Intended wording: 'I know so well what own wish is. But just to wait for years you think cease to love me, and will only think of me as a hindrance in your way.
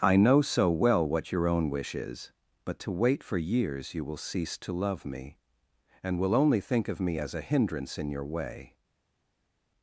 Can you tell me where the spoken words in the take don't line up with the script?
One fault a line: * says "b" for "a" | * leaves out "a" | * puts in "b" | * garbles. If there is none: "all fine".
* puts in "your"
* leaves out "just"
* says "will" for "think"